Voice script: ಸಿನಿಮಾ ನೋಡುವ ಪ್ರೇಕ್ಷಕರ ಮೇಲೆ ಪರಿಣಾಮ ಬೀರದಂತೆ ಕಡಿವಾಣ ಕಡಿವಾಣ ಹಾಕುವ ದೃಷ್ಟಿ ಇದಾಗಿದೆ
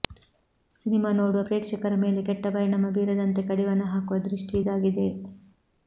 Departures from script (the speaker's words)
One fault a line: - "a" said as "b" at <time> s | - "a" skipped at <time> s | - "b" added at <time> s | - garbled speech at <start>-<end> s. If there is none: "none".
- "ಕೆಟ್ಟ" added at 2.2 s
- "ಕಡಿವಾಣ" skipped at 3.8 s